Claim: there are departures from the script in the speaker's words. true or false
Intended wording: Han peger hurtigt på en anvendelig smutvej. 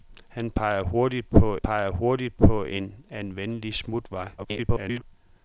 true